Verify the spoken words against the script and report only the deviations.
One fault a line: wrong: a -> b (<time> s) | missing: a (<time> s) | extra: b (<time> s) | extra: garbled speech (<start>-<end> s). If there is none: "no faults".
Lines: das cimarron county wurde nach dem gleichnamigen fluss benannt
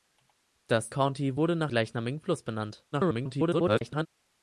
missing: cimarron (0.9 s)
missing: dem (1.7 s)
extra: garbled speech (2.9-4.1 s)